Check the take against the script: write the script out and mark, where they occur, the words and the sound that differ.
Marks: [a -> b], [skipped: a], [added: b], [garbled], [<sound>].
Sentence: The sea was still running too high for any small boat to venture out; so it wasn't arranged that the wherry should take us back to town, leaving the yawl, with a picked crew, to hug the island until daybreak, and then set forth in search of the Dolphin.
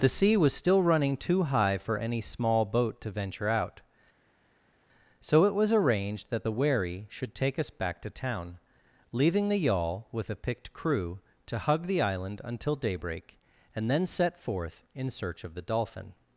The sea was still running too high for any small boat to venture out; so it [wasn't -> was] arranged that the wherry should take us back to town, leaving the yawl, with a picked crew, to hug the island until daybreak, and then set forth in search of the Dolphin.